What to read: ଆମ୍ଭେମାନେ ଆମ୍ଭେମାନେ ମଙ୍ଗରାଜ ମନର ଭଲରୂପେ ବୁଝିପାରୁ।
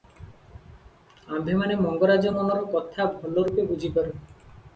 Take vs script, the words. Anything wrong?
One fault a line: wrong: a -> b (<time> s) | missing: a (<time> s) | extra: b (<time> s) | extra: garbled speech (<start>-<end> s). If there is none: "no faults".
missing: ଆମ୍ଭେମାନେ (1.8 s)
extra: କଥା (2.8 s)